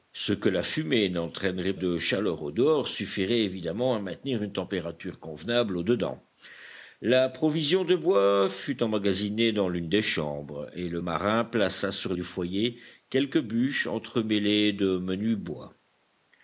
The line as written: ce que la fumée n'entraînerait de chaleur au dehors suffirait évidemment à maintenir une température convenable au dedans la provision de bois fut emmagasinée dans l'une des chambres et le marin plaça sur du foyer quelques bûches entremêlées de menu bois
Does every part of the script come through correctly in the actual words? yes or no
yes